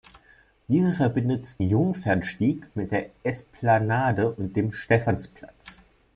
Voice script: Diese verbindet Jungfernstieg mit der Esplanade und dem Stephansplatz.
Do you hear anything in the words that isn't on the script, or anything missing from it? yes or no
no